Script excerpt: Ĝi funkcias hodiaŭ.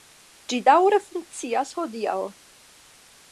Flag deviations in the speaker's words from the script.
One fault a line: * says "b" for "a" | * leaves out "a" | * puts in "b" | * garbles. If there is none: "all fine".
* puts in "daŭre"